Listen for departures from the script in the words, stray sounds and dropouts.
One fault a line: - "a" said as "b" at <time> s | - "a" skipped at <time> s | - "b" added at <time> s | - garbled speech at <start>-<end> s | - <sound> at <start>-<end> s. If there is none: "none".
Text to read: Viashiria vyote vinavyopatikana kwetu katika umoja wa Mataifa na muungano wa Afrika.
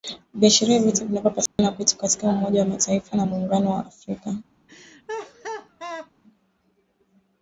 - dropout at 1.5-1.6 s
- laugh at 4.7-6.1 s